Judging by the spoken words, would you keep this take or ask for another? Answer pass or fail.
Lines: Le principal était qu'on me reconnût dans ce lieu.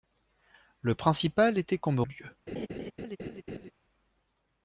fail